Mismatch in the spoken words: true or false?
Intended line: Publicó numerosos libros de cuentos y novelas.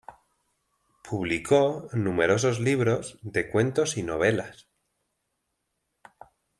false